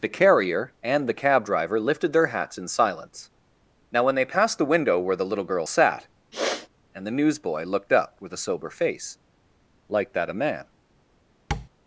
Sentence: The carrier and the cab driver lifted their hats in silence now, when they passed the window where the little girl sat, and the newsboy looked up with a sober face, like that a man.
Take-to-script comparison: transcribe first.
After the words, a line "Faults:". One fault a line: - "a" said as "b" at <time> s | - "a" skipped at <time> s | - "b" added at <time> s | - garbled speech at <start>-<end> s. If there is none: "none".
The carrier and the cab driver lifted their hats in silence now, when they passed the window where the little girl sat, and the newsboy looked up with a sober face, like that a man.
Faults:
none